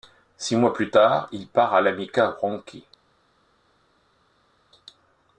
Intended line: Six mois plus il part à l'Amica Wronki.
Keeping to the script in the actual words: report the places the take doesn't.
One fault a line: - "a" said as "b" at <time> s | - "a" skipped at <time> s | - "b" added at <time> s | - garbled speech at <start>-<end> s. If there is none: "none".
- "tard" added at 0.9 s